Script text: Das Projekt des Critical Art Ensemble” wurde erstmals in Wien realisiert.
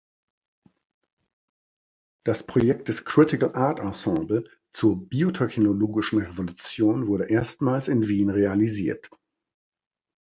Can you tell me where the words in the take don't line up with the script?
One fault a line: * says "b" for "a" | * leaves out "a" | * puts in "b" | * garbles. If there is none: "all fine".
* puts in "zur biotechnologischen Revolution"